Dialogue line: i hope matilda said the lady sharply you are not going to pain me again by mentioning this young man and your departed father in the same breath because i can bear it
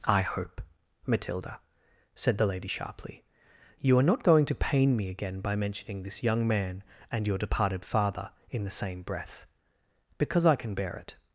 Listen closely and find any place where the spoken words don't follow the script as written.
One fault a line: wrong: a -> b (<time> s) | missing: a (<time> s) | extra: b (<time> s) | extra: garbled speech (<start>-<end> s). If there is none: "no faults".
no faults